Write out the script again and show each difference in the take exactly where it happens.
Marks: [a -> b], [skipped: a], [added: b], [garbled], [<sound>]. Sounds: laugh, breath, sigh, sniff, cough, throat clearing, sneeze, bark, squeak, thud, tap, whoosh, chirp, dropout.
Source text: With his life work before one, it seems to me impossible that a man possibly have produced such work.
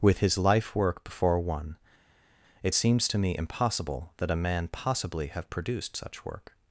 With his life work before one, it seems to me impossible that a man possibly have produced such work.